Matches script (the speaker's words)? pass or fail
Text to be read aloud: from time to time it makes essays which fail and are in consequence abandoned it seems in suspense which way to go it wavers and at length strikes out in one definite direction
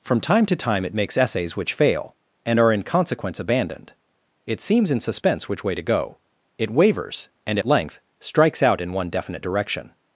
pass